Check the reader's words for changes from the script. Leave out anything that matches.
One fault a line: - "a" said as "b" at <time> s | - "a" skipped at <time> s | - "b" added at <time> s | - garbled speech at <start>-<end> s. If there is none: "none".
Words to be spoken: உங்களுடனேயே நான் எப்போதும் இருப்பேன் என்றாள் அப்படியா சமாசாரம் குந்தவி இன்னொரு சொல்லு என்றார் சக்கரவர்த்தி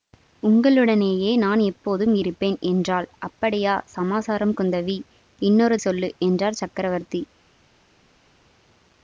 none